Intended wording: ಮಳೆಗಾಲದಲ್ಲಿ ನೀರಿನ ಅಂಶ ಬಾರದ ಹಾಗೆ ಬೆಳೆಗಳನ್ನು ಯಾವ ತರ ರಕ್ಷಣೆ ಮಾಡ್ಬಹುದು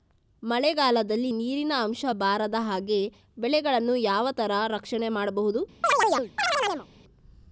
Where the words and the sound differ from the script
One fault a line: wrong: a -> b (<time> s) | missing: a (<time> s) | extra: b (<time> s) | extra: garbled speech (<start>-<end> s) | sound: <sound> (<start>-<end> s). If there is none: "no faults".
sound: chirp (5.8-6.9 s)